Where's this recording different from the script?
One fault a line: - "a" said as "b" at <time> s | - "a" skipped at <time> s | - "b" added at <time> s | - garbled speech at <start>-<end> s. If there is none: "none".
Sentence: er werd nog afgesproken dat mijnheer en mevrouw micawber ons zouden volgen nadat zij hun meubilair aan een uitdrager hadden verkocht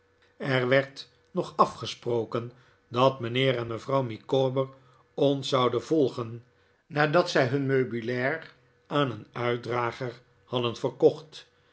none